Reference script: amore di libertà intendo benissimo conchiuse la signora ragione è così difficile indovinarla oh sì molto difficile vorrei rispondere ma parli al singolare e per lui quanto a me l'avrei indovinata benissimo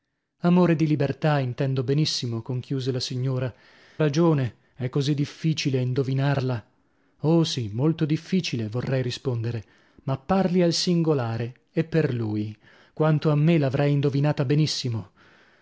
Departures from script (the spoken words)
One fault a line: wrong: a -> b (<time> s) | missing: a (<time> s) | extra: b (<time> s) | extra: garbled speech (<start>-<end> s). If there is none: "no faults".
no faults